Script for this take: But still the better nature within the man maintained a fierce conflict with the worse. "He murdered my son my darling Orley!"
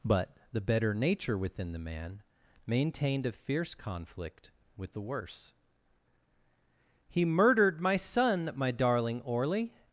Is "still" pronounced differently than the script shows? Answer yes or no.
yes